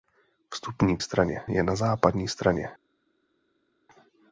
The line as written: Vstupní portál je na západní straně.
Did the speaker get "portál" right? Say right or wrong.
wrong